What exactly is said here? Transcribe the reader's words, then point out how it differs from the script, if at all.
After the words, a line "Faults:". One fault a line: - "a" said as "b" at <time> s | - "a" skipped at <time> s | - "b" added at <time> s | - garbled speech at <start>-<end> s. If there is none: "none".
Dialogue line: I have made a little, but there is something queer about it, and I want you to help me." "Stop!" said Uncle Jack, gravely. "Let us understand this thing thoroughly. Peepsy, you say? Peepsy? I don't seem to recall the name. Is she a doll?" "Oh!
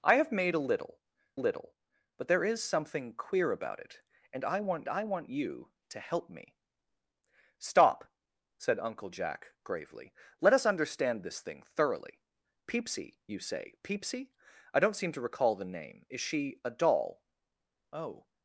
I have made a little little, but there is something queer about it, and I want I want you to help me." "Stop!" said Uncle Jack, gravely. "Let us understand this thing thoroughly. Peepsy, you say? Peepsy? I don't seem to recall the name. Is she a doll?" "Oh!
Faults:
- "little" added at 1.3 s
- "I want" added at 4.9 s